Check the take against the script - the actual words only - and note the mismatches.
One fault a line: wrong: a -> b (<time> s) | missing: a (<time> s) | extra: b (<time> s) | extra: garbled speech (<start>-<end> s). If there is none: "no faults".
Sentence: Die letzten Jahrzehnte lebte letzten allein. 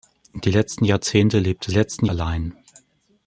no faults